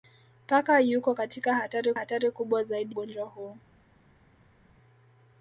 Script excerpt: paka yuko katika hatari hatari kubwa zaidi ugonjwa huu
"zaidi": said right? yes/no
yes